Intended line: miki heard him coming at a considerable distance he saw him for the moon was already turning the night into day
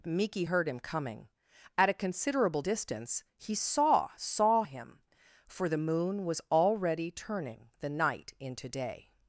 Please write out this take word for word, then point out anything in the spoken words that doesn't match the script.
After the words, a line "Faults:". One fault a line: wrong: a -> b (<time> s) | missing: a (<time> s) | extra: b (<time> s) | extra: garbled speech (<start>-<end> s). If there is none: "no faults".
miki heard him coming at a considerable distance he saw saw him for the moon was already turning the night into day
Faults:
extra: saw (4.1 s)